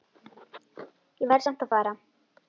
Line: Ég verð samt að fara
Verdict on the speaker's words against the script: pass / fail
pass